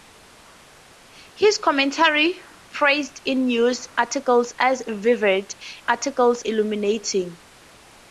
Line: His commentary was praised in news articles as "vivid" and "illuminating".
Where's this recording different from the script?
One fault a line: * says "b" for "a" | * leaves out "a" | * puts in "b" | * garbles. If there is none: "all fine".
* leaves out "was"
* says "articles" for "and"